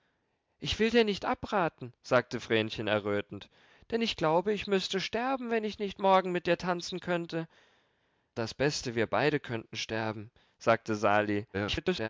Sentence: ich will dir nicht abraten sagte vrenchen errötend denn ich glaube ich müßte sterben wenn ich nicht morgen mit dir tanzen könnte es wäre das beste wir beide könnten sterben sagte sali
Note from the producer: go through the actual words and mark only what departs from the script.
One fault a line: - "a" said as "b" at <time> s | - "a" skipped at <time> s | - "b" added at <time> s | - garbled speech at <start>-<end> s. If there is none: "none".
- "es wäre" skipped at 7.5 s
- garbled speech at 11.5-12.1 s